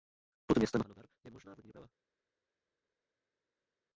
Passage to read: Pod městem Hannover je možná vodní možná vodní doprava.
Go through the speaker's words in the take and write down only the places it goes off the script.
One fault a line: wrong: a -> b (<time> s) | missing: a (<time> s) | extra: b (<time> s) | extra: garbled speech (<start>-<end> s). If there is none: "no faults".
missing: možná vodní (1.7 s)